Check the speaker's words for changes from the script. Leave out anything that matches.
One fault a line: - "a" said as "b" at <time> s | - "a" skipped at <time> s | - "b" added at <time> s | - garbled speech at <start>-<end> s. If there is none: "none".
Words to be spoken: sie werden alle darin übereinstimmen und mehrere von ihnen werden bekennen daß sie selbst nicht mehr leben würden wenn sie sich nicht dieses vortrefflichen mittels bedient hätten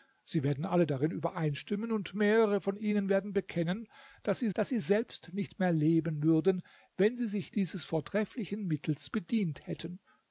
- "daß sie" added at 4.5 s
- "nicht" skipped at 7.5 s